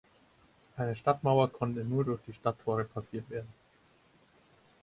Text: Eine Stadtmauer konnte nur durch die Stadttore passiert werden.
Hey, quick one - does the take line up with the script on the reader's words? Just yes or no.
yes